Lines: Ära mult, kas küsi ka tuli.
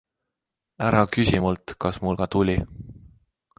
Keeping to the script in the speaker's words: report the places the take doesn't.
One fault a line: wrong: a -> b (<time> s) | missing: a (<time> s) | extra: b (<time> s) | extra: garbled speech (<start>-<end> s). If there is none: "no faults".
extra: küsi (1.2 s)
wrong: küsi -> mul (2.1 s)